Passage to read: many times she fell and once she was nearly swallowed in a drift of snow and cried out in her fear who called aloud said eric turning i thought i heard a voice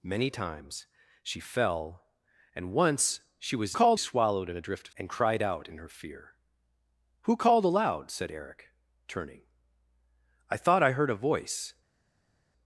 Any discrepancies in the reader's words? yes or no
yes